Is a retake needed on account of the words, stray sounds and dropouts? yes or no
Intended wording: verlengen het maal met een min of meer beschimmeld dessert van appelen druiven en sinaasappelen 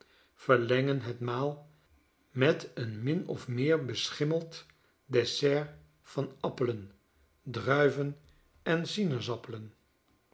no